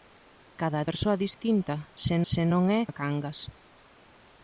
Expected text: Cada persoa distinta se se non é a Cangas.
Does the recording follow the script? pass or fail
pass